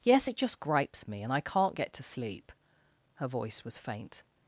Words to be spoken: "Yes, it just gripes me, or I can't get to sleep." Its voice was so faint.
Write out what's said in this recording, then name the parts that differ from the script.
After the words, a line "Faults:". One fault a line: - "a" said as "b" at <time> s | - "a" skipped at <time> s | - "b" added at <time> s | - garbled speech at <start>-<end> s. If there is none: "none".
"Yes, it just gripes me, and I can't get to sleep." Her voice was faint.
Faults:
- "or" said as "and" at 1.2 s
- "Its" said as "Her" at 3.1 s
- "so" skipped at 3.8 s